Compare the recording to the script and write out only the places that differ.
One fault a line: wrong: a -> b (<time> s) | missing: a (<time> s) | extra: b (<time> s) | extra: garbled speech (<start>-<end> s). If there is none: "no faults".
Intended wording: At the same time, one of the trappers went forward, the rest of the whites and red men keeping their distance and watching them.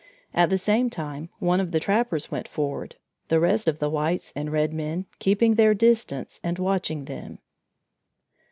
no faults